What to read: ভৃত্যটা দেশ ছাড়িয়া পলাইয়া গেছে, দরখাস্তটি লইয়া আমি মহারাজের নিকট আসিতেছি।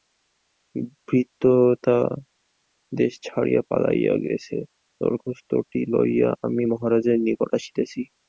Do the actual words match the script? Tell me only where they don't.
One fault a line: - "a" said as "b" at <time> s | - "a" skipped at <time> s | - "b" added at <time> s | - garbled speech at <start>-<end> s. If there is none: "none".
none